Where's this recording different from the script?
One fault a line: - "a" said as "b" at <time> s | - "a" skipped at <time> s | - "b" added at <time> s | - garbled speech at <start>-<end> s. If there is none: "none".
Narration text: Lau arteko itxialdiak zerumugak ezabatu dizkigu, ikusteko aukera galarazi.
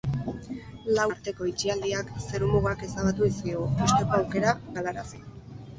none